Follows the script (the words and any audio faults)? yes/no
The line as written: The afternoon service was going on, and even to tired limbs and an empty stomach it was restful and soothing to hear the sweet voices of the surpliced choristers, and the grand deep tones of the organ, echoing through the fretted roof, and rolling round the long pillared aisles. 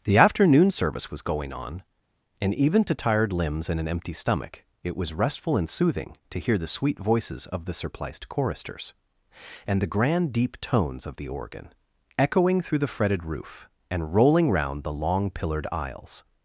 yes